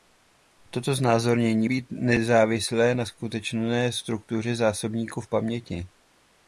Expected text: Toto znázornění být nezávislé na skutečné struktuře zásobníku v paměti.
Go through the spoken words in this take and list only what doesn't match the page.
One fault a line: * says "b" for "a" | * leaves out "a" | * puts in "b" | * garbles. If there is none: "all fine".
all fine